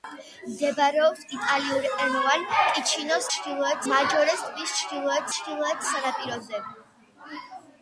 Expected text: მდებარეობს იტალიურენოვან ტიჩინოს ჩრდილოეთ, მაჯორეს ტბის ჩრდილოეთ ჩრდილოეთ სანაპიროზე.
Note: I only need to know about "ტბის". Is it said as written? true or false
true